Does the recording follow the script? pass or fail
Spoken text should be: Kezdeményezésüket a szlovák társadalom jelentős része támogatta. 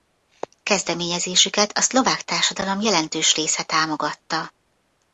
pass